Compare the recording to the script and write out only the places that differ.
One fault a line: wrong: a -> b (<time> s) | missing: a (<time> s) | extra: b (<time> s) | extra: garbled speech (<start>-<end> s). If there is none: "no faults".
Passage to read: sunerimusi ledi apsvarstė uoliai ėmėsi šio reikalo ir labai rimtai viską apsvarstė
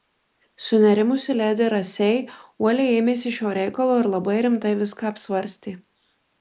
wrong: apsvarstė -> rasei (1.7 s)